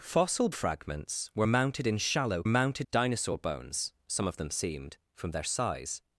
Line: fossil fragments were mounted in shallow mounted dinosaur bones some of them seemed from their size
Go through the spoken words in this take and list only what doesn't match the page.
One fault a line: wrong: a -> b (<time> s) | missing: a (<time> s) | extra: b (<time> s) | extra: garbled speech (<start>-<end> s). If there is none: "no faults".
no faults